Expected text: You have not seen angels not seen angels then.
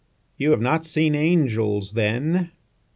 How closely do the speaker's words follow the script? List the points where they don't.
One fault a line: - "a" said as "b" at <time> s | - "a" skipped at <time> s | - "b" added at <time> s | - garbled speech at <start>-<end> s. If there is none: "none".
- "not seen angels" skipped at 1.9 s